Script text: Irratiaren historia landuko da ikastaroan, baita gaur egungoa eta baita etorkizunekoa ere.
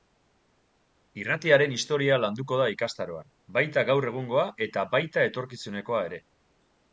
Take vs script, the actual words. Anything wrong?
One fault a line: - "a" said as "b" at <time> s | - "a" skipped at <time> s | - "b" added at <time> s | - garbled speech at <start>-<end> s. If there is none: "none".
none